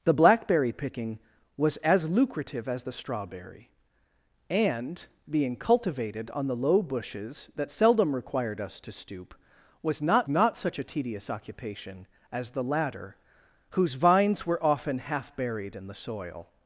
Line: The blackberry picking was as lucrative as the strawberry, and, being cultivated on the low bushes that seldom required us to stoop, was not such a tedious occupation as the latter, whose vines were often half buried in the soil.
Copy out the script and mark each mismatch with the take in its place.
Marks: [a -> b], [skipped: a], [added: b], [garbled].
The blackberry picking was as lucrative as the strawberry, and, being cultivated on the low bushes that seldom required us to stoop, was not [added: not] such a tedious occupation as the latter, whose vines were often half buried in the soil.